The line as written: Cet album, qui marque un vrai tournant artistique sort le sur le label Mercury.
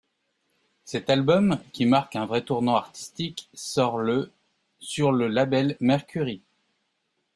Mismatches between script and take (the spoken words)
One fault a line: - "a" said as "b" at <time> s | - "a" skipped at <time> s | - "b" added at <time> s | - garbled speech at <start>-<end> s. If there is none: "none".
none